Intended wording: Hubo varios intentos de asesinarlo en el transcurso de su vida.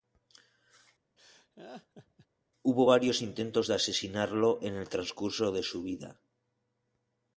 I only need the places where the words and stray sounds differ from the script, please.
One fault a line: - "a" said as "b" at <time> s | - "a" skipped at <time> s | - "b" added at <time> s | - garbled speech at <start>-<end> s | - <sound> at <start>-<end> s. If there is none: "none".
- laugh at 1.2-2.3 s